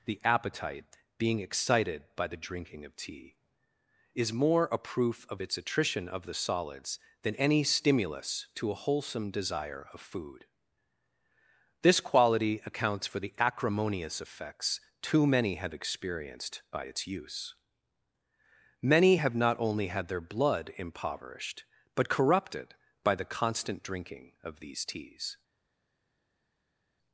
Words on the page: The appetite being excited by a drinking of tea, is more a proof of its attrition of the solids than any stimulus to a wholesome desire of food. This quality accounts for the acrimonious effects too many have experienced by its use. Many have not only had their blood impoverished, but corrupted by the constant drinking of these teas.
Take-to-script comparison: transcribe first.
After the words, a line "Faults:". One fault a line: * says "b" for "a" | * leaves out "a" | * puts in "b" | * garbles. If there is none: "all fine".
The appetite being excited by the drinking of tea, is more a proof of its attrition of the solids than any stimulus to a wholesome desire of food. This quality accounts for the acrimonious effects too many have experienced by its use. Many have not only had their blood impoverished, but corrupted by the constant drinking of these teas.
Faults:
* says "the" for "a"